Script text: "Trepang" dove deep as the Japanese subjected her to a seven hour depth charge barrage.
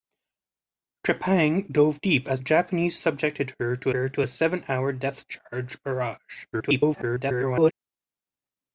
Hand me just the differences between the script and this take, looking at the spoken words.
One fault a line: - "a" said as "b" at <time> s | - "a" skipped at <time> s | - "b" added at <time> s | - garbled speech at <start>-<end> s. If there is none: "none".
- "the" skipped at 2.4 s
- "her to" added at 3.9 s
- garbled speech at 6.5-7.7 s